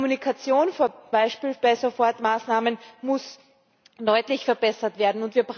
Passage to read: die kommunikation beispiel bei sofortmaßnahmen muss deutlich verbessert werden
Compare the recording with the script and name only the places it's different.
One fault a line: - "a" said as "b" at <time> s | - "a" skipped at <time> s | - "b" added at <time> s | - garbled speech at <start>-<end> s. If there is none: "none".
none